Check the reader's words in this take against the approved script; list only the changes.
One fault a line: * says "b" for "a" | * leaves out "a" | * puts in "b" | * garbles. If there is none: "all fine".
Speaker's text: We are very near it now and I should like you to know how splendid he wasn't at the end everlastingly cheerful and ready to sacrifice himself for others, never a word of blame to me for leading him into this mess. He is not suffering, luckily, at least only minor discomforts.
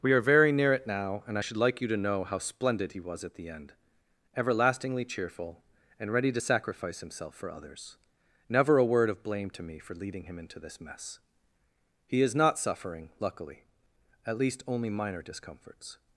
* says "was" for "wasn't"